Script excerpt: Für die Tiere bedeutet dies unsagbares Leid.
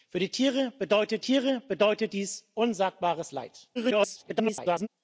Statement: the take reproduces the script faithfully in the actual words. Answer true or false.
false